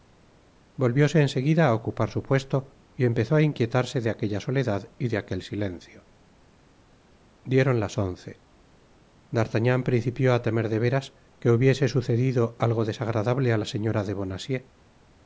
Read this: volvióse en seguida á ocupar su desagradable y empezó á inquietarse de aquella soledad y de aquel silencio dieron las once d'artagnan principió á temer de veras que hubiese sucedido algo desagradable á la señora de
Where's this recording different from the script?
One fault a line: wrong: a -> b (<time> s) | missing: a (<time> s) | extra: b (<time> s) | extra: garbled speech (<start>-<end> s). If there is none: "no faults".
wrong: desagradable -> puesto (2.3 s)